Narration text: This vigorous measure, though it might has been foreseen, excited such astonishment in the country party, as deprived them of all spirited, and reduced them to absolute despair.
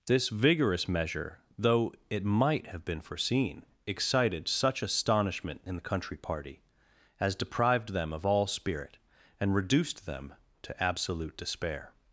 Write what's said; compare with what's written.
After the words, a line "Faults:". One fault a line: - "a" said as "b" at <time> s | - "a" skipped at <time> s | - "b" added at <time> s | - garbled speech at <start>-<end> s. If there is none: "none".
This vigorous measure, though it might have been foreseen, excited such astonishment in the country party, as deprived them of all spirit, and reduced them to absolute despair.
Faults:
- "has" said as "have" at 2.7 s
- "spirited" said as "spirit" at 8.5 s